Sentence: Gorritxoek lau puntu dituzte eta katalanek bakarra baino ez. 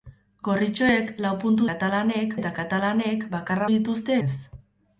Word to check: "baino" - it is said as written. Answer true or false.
false